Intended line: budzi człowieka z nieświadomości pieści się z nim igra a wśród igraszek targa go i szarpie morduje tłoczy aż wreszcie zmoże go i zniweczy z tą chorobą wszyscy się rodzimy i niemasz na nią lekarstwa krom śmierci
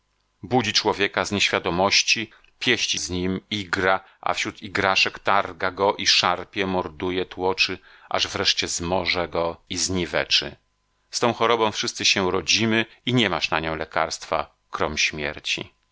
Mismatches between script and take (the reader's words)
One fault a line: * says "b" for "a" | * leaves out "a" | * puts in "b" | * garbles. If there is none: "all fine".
* leaves out "się"